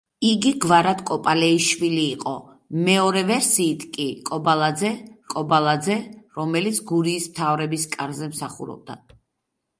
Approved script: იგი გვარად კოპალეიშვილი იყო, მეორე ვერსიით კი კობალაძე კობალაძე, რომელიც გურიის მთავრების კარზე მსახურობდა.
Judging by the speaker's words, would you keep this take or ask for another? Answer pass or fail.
pass